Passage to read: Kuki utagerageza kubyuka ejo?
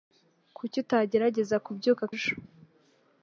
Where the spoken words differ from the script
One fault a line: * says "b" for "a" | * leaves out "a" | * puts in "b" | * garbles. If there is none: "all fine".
all fine